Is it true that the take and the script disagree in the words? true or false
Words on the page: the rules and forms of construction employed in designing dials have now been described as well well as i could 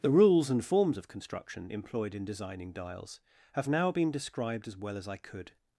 true